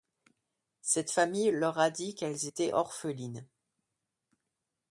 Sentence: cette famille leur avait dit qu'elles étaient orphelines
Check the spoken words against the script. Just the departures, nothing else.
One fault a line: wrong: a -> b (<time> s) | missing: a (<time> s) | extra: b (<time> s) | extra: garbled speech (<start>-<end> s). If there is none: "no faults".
wrong: avait -> a (1.8 s)